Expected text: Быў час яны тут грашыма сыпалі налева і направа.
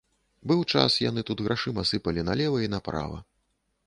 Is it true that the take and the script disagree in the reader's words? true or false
false